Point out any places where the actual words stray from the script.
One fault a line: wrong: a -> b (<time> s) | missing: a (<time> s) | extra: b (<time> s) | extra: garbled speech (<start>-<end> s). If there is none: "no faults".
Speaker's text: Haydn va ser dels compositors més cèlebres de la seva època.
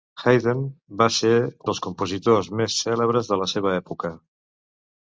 no faults